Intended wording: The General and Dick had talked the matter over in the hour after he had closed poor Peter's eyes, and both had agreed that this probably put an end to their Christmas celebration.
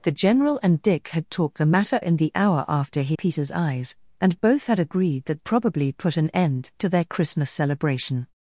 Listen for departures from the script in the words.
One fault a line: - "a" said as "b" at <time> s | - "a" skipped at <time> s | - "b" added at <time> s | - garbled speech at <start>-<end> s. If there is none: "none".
- "over" skipped at 2.0 s
- "had closed poor" skipped at 3.2 s
- "this" skipped at 5.4 s